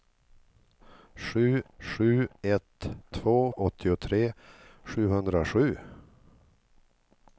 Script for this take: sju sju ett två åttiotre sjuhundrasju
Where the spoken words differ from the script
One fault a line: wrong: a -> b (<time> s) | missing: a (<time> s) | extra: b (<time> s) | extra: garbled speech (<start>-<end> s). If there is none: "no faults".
no faults